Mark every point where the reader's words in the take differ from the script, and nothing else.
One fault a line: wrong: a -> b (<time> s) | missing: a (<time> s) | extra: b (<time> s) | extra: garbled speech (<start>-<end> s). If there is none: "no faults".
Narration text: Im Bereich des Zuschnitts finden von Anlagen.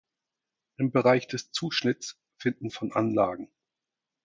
no faults